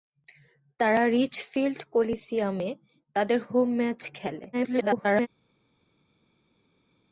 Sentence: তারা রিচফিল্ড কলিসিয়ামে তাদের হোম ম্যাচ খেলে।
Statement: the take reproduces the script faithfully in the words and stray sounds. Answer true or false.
false